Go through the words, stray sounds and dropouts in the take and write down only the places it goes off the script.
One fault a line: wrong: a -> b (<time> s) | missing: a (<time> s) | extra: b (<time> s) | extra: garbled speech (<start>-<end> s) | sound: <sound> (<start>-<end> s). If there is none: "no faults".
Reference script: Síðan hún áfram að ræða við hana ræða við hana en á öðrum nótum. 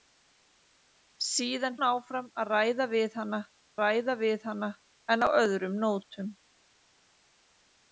no faults